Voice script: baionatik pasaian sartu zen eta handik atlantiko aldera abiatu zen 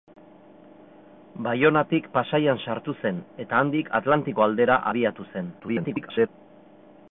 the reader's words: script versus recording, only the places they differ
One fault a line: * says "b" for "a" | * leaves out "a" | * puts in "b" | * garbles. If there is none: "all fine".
* garbles